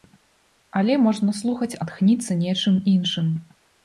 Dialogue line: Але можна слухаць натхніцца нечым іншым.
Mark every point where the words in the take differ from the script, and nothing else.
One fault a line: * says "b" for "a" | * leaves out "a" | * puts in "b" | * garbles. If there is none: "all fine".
all fine